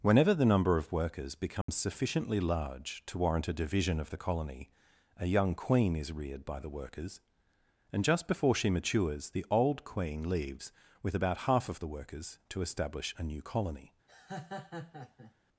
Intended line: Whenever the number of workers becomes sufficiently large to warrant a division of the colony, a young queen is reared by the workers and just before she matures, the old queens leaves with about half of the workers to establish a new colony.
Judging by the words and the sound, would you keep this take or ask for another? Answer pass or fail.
fail